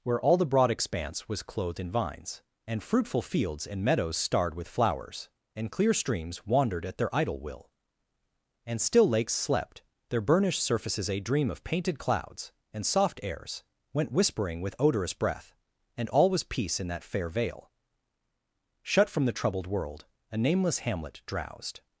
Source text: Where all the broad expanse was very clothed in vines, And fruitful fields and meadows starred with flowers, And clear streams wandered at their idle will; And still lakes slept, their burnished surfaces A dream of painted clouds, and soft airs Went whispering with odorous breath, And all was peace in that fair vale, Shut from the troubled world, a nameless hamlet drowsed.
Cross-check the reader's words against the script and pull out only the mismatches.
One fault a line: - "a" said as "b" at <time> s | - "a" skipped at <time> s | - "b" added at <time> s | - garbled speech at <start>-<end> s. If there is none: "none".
- "very" skipped at 1.4 s